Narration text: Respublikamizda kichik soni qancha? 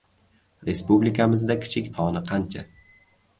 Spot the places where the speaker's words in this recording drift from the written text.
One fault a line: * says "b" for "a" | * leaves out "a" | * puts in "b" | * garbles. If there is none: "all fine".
all fine